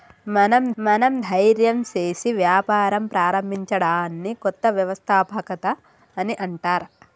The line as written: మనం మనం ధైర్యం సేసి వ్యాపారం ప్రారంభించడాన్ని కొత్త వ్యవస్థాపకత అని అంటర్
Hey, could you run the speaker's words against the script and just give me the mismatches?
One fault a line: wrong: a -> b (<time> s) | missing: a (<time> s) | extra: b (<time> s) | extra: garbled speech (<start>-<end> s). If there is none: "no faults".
no faults